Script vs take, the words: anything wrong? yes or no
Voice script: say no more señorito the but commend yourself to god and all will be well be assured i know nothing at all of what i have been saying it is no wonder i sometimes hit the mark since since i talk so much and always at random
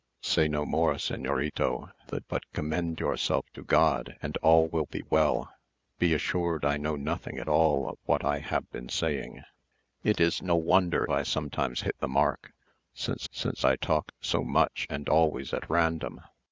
no